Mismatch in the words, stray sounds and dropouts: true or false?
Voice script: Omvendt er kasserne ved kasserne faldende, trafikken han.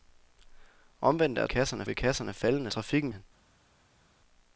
false